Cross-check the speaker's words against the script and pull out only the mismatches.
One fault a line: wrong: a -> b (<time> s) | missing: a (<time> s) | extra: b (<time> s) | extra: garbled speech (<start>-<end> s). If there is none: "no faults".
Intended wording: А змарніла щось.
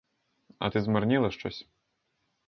extra: ти (0.6 s)